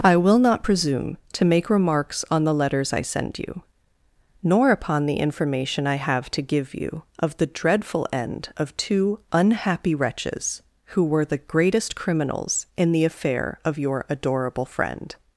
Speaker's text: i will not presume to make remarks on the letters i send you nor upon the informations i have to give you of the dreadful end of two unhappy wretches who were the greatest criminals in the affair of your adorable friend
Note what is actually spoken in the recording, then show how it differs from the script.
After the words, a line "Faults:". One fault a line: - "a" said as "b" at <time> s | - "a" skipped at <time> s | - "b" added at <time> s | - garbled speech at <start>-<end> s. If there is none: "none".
i will not presume to make remarks on the letters i send you nor upon the information i have to give you of the dreadful end of two unhappy wretches who were the greatest criminals in the affair of your adorable friend
Faults:
- "informations" said as "information" at 5.2 s